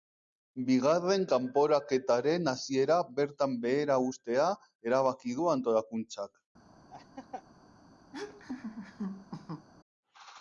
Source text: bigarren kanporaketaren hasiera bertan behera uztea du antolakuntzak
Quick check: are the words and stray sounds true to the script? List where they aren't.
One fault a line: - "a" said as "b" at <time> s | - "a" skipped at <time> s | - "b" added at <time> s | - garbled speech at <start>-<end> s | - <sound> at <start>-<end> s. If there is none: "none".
- "erabaki" added at 4.9 s
- laugh at 6.9-7.4 s
- laugh at 8.1-9.7 s